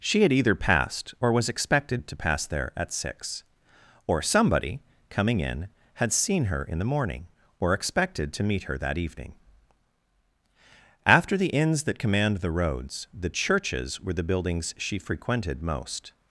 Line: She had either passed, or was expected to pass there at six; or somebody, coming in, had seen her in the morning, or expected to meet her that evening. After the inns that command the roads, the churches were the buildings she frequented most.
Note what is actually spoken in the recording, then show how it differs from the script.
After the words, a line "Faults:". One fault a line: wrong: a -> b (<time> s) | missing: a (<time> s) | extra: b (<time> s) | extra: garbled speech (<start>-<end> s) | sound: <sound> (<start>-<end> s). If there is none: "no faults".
She had either passed, or was expected to pass there at six; or somebody, coming in, had seen her in the morning, or expected to meet her that evening. After the inns that command the roads, the churches were the buildings she frequented most.
Faults:
no faults